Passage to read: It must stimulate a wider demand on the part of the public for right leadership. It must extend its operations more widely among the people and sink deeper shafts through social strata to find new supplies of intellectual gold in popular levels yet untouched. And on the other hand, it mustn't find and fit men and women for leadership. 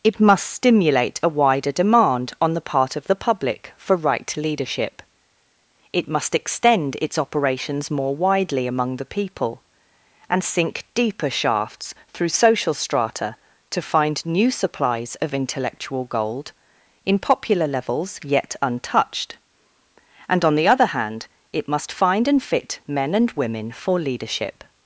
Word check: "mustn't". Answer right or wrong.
wrong